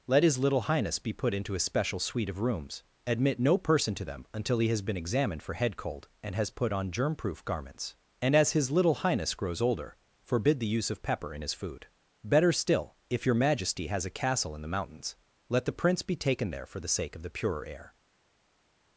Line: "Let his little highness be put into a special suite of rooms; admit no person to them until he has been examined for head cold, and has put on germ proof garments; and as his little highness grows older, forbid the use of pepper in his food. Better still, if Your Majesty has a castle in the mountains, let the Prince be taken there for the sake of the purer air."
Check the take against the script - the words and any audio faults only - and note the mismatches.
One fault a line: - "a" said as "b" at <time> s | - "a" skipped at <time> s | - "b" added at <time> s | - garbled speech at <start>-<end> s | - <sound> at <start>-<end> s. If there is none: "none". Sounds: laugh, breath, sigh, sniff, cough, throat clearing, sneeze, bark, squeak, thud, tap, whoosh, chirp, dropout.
none